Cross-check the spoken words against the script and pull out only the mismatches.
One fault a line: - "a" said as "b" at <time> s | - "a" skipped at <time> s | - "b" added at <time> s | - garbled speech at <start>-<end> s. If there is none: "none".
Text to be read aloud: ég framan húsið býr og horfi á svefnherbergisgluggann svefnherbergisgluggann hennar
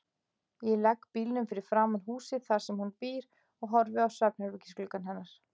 - "legg bílnum fyrir" added at 0.8 s
- "þar sem hún" added at 2.5 s
- "svefnherbergisgluggann" skipped at 5.1 s